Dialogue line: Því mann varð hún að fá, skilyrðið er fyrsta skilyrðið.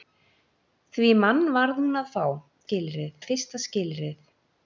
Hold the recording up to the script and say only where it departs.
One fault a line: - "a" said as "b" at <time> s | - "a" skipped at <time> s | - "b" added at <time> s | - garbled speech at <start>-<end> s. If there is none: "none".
none